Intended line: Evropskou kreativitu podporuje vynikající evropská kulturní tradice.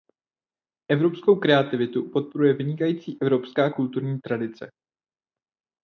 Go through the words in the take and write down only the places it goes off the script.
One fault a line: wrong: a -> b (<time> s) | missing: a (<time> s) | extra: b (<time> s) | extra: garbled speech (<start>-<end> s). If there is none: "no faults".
no faults